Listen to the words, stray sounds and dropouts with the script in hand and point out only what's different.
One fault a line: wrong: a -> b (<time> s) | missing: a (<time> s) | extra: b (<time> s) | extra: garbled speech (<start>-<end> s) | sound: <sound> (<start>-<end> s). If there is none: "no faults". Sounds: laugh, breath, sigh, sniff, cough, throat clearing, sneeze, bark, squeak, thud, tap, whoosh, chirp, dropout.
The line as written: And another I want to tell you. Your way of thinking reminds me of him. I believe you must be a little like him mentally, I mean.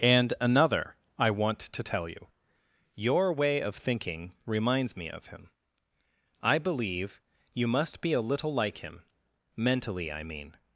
no faults